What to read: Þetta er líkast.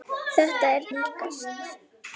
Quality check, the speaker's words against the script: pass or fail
pass